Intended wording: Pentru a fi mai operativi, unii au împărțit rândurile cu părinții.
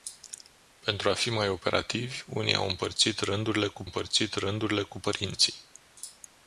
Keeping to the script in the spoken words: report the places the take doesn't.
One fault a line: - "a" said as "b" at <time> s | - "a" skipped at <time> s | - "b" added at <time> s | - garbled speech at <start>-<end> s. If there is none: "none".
- "împărțit rândurile cu" added at 3.8 s